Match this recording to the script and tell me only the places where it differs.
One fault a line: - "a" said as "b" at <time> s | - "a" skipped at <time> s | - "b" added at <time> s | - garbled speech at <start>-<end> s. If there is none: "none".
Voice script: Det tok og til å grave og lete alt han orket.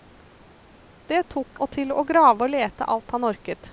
none